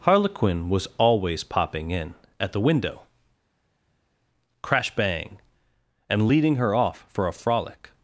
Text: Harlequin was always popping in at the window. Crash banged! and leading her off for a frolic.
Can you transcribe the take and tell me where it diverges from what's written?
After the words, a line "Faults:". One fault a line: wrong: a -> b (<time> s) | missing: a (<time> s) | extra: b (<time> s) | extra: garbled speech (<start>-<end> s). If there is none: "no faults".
Harlequin was always popping in at the window. Crash bang! and leading her off for a frolic.
Faults:
wrong: banged -> bang (4.9 s)